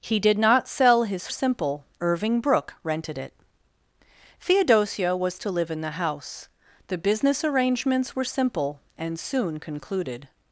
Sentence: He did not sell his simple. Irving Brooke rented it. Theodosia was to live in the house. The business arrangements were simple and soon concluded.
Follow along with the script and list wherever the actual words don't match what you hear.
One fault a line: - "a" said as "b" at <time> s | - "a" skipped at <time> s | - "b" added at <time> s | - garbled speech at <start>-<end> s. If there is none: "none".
none